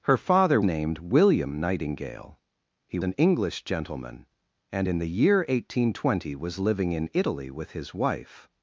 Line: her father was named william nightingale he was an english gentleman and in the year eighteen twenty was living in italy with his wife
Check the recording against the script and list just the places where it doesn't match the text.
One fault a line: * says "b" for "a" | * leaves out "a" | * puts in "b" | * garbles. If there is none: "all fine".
* leaves out "was"
* leaves out "was"